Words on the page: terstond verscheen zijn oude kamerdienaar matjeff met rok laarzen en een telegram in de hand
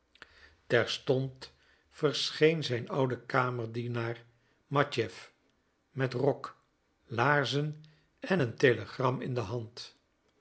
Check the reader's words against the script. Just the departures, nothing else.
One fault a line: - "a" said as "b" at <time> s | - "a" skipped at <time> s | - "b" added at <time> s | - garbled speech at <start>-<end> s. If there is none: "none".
none